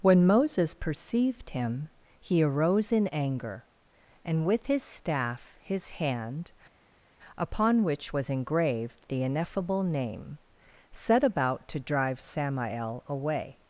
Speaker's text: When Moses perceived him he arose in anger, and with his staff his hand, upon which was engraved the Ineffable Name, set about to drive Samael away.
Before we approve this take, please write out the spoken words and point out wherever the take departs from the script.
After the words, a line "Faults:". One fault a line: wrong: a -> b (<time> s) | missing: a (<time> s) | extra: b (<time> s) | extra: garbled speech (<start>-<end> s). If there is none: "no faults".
When Moses perceived him he arose in anger, and with his staff his hand, upon which was engraved the Ineffable Name, set about to drive Samael away.
Faults:
no faults